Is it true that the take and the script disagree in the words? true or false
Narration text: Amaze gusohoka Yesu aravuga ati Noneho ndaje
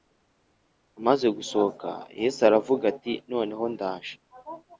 false